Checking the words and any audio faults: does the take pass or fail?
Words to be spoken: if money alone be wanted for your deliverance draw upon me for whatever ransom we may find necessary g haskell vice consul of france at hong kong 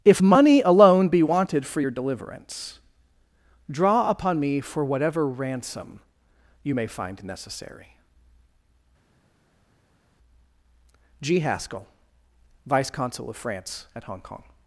fail